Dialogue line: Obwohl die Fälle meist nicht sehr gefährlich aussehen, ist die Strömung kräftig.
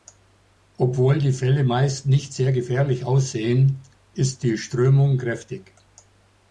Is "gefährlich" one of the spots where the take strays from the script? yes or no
no